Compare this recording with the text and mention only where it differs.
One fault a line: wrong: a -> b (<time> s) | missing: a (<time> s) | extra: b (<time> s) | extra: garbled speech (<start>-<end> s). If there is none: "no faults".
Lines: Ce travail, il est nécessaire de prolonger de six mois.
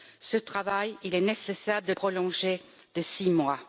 no faults